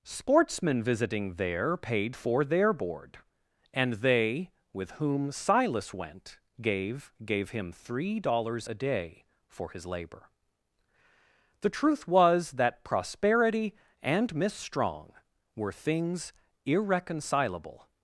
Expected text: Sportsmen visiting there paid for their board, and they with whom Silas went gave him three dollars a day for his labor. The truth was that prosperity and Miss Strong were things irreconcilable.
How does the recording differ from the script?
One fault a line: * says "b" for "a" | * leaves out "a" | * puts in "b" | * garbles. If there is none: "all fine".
* puts in "gave"